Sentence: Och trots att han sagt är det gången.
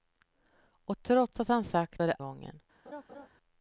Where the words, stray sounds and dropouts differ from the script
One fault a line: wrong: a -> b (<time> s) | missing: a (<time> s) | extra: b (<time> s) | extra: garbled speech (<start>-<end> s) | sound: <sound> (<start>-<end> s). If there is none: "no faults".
sound: laugh (2.9-3.3 s)